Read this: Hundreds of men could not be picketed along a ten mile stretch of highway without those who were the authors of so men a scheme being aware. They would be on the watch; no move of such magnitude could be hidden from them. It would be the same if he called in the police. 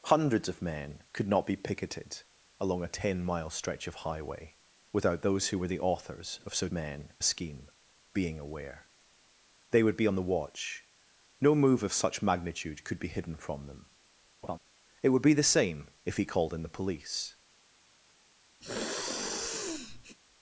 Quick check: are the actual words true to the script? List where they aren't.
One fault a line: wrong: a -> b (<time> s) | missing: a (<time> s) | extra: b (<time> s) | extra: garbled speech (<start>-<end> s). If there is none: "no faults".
no faults